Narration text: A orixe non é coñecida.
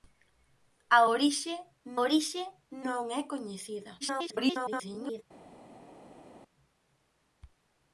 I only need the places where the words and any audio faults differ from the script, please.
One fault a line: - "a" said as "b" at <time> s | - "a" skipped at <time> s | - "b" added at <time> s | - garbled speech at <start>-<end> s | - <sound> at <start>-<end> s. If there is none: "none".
- "orixe" added at 2.0 s
- garbled speech at 4.0-5.2 s